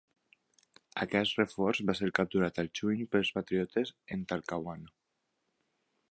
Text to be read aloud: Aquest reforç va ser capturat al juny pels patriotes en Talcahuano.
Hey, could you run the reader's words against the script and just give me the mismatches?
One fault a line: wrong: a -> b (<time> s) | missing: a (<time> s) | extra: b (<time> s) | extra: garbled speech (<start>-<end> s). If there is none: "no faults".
no faults